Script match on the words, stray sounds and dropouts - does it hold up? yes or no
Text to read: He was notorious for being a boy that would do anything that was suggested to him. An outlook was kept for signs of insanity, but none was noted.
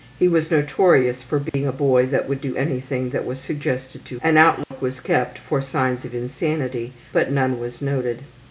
no